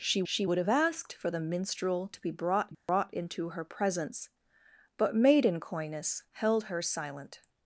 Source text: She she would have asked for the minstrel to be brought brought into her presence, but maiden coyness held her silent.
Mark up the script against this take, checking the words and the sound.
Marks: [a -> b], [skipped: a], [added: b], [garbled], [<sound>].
She she would have asked for the minstrel to be brought brought [dropout] into her presence, but maiden coyness held her silent.